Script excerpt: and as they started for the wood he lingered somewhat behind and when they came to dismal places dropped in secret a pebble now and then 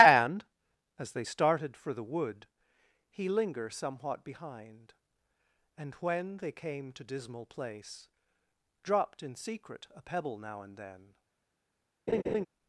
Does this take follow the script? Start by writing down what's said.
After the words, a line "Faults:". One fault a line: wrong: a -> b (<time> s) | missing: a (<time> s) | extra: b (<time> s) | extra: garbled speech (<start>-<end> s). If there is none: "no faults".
and as they started for the wood he linger somewhat behind and when they came to dismal place dropped in secret a pebble now and then
Faults:
wrong: lingered -> linger (3.3 s)
wrong: places -> place (7.5 s)